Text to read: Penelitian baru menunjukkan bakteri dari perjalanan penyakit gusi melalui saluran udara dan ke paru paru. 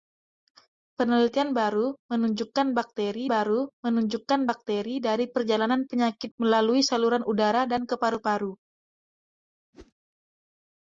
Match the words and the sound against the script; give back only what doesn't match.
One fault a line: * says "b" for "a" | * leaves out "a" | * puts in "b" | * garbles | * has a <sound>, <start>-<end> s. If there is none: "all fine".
* puts in "baru menunjukkan bakteri"
* leaves out "gusi"
* has a whoosh, 9.7-9.9 s